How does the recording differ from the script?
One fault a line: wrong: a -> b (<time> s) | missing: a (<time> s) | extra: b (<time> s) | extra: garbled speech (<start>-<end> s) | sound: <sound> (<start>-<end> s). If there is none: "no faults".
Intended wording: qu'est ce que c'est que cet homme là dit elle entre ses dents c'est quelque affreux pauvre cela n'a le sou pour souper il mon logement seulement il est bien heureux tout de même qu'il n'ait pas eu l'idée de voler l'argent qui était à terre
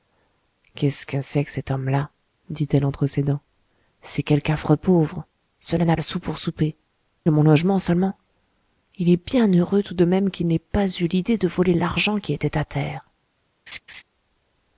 sound: laugh (13.7-14.0 s)